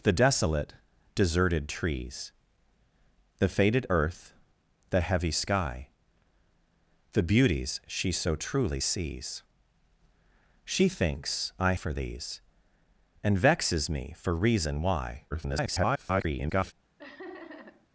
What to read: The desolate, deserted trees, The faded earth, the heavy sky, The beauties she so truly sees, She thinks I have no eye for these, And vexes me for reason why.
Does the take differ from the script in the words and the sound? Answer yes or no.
yes